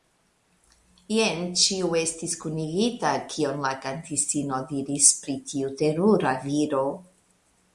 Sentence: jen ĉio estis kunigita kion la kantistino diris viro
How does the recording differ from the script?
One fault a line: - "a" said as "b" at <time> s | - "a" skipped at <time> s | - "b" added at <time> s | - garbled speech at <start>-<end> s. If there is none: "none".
- "pri tiu terura" added at 5.3 s